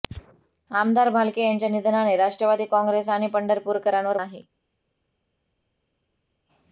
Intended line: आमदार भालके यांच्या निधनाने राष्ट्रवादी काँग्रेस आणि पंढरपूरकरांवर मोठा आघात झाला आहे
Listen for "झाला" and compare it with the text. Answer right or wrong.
wrong